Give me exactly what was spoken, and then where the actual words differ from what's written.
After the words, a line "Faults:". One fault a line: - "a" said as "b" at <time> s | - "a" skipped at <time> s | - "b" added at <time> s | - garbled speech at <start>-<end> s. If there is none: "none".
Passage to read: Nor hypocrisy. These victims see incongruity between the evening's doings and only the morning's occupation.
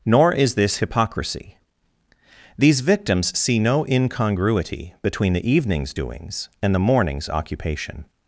Nor is this hypocrisy. These victims see no incongruity between the evening's doings and the morning's occupation.
Faults:
- "is this" added at 0.3 s
- "no" added at 3.6 s
- "only" skipped at 6.7 s